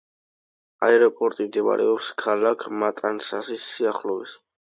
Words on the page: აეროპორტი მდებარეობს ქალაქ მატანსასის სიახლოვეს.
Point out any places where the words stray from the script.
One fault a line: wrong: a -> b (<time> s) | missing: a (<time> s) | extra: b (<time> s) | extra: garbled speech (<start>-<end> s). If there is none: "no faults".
no faults